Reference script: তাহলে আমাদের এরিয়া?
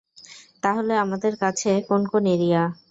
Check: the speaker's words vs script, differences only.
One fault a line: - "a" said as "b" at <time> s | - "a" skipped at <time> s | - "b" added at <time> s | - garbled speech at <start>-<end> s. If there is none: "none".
- "কাছে কোন কোন" added at 1.4 s